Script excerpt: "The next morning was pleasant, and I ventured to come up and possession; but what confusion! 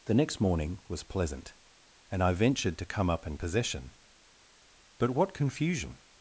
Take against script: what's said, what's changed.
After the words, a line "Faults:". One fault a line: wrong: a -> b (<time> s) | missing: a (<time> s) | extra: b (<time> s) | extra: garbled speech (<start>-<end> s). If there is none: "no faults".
"The next morning was pleasant, and I ventured to come up and possession; but what confusion!
Faults:
no faults